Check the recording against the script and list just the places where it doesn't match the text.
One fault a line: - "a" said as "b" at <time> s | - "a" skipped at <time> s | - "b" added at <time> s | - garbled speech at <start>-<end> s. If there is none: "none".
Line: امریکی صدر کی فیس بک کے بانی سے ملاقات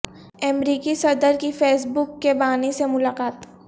none